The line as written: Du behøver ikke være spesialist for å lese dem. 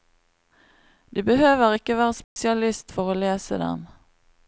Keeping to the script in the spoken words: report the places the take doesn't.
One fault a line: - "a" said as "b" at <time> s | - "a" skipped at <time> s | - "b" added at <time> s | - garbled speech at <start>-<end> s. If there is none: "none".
none